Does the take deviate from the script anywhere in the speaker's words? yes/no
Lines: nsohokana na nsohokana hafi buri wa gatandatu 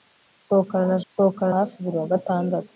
no